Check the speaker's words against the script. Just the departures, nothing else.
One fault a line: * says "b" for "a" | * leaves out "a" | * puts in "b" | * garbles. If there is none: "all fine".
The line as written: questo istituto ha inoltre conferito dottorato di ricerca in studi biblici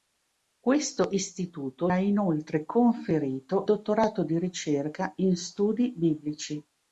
all fine